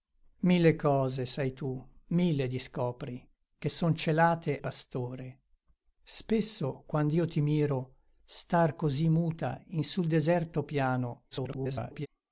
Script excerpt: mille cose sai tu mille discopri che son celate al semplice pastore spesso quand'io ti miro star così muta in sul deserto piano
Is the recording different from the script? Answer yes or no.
yes